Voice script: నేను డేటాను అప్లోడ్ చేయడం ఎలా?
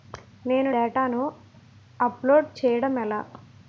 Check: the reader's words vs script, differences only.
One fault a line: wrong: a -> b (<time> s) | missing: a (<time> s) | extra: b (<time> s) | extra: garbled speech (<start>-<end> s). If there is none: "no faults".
no faults